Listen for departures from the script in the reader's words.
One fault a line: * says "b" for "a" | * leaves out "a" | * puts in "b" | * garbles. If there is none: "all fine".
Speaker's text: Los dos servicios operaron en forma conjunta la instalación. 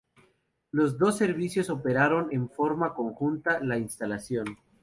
all fine